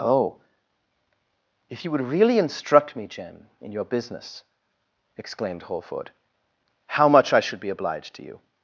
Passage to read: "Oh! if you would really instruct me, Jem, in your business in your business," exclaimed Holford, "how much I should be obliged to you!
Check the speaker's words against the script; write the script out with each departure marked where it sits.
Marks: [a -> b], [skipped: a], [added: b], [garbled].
"Oh! if you would really instruct me, Jem, in your business [skipped: in your business,"] exclaimed Holford, "how much I should be obliged to you!